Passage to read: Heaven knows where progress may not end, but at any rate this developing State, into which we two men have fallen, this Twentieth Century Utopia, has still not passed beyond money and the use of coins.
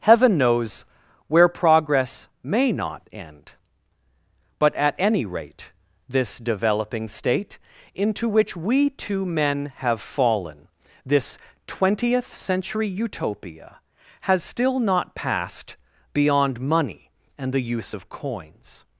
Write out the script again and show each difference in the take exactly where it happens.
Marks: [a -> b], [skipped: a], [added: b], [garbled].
Heaven knows where progress may not end, but at any rate this developing State, into which we two men have fallen, this Twentieth Century Utopia, has still not passed beyond money and the use of coins.